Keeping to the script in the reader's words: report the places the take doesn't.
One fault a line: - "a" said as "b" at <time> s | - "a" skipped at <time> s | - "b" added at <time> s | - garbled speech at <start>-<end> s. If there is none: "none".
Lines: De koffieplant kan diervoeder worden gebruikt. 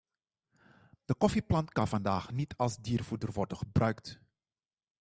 - "vandaag niet als" added at 1.9 s